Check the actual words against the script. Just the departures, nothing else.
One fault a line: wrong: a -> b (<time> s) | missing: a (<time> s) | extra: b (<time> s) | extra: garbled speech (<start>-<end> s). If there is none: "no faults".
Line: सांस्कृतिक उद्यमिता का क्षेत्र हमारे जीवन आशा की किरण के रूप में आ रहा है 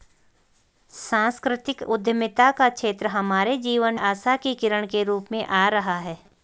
no faults